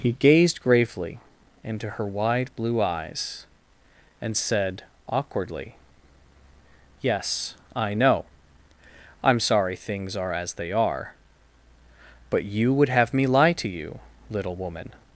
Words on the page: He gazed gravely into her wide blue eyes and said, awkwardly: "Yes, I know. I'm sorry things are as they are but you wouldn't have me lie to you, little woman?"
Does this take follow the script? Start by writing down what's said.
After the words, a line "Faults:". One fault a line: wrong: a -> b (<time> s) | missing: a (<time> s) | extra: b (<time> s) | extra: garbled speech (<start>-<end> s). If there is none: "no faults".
He gazed gravely into her wide blue eyes and said, awkwardly: "Yes, I know. I'm sorry things are as they are but you would have me lie to you, little woman?"
Faults:
wrong: wouldn't -> would (12.7 s)